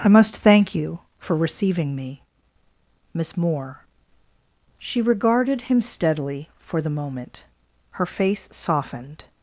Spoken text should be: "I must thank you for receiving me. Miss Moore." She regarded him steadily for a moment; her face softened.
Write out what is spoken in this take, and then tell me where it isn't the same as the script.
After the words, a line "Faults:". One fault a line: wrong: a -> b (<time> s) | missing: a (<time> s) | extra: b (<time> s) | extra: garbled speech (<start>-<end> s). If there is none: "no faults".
"I must thank you for receiving me. Miss Moore." She regarded him steadily for the moment; her face softened.
Faults:
wrong: a -> the (6.8 s)